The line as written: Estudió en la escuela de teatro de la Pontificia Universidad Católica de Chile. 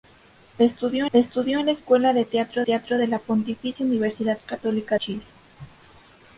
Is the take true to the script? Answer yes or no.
no